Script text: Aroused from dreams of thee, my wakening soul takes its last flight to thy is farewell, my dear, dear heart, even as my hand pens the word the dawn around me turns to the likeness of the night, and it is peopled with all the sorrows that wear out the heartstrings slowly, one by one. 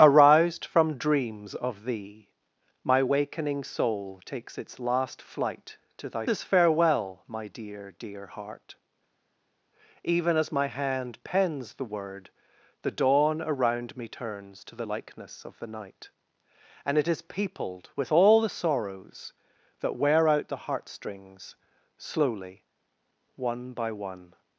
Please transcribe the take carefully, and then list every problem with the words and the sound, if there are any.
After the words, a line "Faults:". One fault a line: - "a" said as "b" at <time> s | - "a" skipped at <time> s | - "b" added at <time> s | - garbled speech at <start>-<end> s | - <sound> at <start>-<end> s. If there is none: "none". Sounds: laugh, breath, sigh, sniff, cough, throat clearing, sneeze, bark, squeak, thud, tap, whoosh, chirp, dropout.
Aroused from dreams of thee, my wakening soul takes its last flight to thy is farewell, my dear, dear heart, even as my hand pens the word the dawn around me turns to the likeness of the night, and it is peopled with all the sorrows that wear out the heartstrings slowly, one by one.
Faults:
none